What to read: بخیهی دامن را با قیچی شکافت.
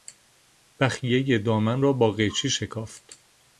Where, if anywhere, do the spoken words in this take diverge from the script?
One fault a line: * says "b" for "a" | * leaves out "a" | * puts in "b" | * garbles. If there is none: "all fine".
all fine